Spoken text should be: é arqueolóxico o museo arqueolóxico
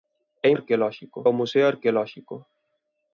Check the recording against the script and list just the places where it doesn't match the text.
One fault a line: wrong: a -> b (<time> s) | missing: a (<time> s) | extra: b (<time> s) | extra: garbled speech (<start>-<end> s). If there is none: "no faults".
no faults